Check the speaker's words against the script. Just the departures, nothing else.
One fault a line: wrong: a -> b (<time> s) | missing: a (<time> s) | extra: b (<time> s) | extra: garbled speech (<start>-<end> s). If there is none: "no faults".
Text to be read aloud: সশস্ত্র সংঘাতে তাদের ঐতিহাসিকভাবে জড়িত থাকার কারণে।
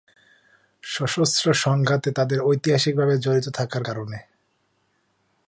no faults